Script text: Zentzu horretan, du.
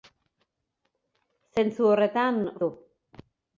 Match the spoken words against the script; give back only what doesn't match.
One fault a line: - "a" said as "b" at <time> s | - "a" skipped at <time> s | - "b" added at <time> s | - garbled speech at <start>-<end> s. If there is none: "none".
none